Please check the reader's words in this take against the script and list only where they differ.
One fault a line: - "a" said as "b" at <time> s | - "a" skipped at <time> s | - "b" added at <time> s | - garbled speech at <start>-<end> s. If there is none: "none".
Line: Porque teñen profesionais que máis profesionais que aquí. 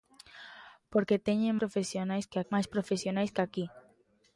none